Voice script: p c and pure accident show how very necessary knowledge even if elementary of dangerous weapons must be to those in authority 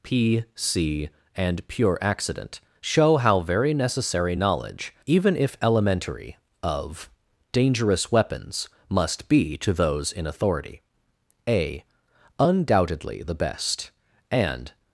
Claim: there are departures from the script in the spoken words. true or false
true